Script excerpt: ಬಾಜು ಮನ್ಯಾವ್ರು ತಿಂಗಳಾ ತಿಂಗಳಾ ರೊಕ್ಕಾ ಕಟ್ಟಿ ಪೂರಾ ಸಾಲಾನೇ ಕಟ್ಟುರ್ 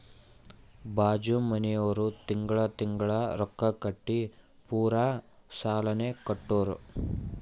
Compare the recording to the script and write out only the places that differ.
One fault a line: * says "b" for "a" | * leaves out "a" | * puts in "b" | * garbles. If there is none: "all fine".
all fine